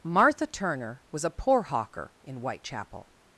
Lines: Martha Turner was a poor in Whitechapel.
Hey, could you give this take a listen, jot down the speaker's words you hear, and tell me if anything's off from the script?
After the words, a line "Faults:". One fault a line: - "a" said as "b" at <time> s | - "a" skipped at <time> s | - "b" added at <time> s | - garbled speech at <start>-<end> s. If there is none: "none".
Martha Turner was a poor hawker in Whitechapel.
Faults:
- "hawker" added at 1.6 s